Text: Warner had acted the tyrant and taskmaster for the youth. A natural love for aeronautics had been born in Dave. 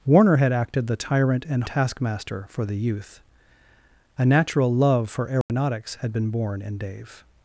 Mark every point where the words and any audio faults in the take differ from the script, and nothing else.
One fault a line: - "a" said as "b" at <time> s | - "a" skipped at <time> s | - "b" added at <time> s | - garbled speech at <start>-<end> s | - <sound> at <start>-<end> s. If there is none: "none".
- dropout at 5.4-5.5 s